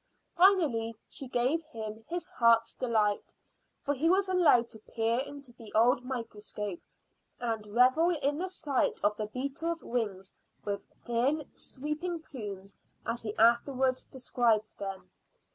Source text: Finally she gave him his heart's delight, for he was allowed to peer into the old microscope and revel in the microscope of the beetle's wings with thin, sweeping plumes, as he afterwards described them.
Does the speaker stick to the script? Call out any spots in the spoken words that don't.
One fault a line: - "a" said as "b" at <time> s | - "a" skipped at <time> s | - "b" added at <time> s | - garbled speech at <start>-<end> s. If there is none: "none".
- "microscope" said as "sight" at 8.5 s